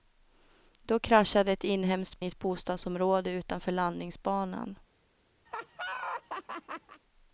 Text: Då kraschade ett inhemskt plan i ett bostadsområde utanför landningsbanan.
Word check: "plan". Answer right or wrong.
wrong